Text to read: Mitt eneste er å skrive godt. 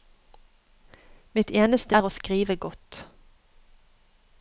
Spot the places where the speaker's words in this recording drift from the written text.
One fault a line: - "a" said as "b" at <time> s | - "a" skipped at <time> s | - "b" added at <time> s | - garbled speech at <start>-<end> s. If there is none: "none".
none